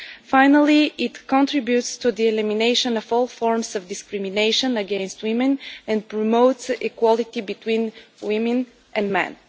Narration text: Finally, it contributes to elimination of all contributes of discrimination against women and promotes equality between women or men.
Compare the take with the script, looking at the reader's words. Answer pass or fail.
fail